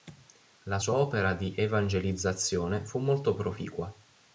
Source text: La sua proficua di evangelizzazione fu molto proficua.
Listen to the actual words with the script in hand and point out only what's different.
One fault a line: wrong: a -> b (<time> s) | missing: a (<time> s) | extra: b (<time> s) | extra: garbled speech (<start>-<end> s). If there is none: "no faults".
wrong: proficua -> opera (0.9 s)